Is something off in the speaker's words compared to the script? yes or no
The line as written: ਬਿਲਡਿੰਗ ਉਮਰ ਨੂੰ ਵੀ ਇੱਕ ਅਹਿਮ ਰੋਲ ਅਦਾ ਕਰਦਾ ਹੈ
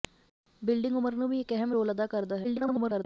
yes